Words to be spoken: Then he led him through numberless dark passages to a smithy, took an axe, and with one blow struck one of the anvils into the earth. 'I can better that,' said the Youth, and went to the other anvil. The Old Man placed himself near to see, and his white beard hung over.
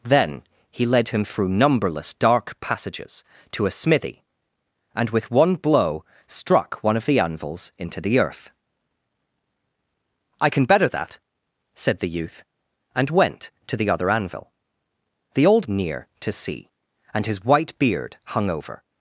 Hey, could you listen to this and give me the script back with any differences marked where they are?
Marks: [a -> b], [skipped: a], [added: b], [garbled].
Then he led him through numberless dark passages to a smithy, [skipped: took an axe,] and with one blow struck one of the anvils into the earth. 'I can better that,' said the Youth, and went to the other anvil. The Old [skipped: Man placed himself] near to see, and his white beard hung over.